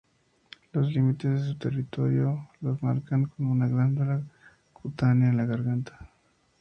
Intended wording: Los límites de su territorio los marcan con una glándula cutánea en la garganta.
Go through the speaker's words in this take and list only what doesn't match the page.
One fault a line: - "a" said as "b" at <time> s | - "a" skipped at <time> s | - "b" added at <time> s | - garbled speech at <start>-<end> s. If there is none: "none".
none